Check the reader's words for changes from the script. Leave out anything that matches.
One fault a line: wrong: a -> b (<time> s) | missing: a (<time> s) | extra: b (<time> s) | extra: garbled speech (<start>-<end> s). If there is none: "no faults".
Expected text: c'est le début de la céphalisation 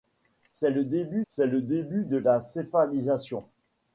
extra: c'est le début (1.3 s)